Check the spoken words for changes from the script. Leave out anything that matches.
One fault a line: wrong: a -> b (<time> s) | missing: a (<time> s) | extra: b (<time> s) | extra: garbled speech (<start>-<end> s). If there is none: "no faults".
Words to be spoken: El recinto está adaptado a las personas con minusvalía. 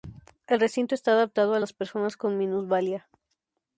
no faults